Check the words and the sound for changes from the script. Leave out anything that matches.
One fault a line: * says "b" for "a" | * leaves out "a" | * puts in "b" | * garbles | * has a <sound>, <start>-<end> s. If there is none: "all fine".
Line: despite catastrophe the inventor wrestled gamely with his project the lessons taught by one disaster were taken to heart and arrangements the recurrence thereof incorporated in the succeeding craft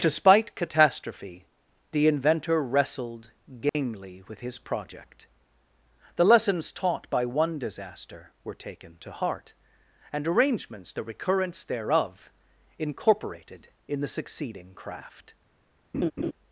* has a dropout, 3.7-3.7 s
* has a laugh, 15.9-16.3 s